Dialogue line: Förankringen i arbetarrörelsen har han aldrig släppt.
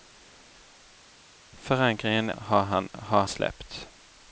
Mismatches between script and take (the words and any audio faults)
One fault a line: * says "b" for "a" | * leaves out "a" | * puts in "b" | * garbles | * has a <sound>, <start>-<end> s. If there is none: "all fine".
* leaves out "arbetarrörelsen"
* says "har" for "aldrig"